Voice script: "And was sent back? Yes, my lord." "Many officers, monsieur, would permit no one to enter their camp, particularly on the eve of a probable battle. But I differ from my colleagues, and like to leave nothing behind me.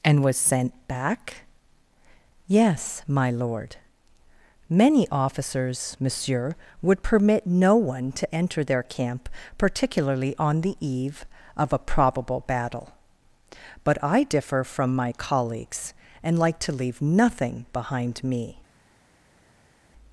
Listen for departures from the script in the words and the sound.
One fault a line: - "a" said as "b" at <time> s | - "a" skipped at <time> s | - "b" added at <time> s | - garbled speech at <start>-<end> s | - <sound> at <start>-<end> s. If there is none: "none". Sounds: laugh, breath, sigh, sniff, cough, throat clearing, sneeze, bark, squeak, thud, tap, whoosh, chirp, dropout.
none